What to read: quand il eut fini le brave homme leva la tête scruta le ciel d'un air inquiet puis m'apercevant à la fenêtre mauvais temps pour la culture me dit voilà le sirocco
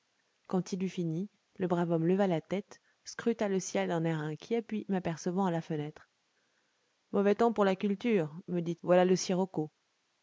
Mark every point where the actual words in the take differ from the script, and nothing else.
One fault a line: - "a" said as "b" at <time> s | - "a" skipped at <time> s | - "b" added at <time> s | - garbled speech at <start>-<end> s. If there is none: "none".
none